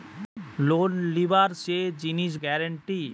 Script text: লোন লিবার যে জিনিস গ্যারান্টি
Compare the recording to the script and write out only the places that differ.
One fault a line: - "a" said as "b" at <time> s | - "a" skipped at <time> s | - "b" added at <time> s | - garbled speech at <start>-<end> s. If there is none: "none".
none